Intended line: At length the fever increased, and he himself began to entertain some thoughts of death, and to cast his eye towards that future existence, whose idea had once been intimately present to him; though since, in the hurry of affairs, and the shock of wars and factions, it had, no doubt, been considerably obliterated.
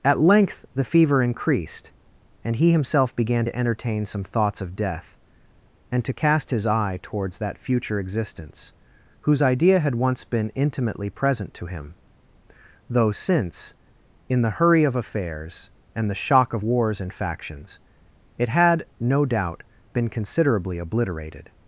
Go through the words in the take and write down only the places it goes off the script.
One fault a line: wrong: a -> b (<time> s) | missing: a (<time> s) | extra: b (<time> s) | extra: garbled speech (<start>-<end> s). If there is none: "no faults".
no faults